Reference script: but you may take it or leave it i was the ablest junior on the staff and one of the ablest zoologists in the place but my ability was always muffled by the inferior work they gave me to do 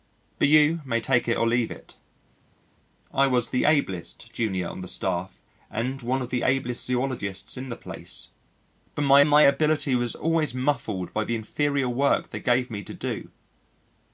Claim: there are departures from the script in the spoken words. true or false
true